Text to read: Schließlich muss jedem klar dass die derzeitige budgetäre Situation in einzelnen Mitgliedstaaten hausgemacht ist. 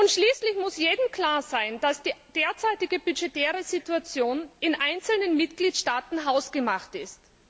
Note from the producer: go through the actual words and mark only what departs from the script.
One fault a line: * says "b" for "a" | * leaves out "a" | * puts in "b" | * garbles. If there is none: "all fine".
* puts in "sein"